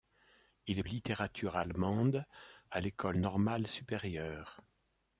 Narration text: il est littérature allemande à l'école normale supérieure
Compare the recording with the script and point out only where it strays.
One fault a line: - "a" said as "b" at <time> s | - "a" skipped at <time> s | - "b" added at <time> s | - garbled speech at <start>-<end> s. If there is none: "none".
none